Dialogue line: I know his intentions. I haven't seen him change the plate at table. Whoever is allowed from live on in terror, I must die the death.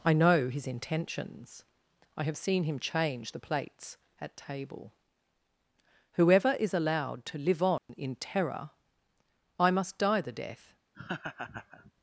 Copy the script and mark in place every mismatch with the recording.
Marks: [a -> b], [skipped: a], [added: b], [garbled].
I know his intentions. I [haven't -> have] seen him change the [plate -> plates] at table. Whoever is allowed [from -> to] live on in terror, I must die the death.